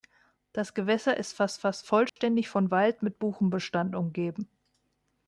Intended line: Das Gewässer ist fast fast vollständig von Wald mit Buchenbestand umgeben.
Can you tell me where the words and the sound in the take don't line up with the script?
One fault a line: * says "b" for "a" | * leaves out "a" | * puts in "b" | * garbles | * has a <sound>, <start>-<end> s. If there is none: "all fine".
* has a dropout, 2.1-2.2 s